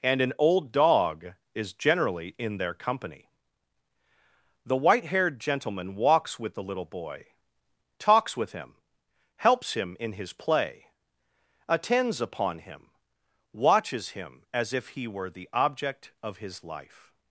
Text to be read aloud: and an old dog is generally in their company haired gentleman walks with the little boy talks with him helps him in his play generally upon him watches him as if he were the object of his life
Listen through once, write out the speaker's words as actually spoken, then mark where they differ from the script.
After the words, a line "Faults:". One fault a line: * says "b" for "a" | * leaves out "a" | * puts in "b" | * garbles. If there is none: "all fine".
and an old dog is generally in their company the white haired gentleman walks with the little boy talks with him helps him in his play attends upon him watches him as if he were the object of his life
Faults:
* puts in "the white"
* says "attends" for "generally"